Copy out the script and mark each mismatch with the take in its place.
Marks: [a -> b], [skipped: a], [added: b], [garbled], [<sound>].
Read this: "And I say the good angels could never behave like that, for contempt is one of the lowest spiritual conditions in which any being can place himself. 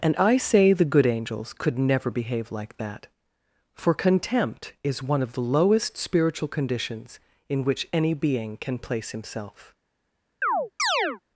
"And I say the good angels could never behave like that, for contempt is one of the lowest spiritual conditions in which any being can place himself. [chirp]